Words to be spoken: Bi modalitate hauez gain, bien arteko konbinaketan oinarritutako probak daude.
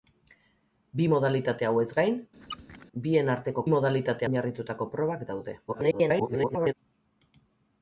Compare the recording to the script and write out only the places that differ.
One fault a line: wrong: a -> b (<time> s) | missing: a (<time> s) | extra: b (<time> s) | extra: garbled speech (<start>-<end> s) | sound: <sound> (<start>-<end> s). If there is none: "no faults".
sound: squeak (2.4-2.9 s)
wrong: konbinaketan -> modalitate (3.7 s)
extra: garbled speech (5.7-6.7 s)